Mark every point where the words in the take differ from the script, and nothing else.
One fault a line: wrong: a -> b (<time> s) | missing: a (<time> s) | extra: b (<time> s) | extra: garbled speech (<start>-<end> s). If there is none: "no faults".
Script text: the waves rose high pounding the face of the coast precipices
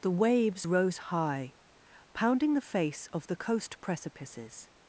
no faults